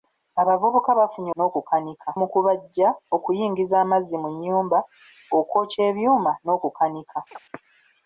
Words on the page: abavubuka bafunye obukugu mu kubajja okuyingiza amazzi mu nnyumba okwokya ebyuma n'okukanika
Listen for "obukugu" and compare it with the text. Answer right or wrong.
wrong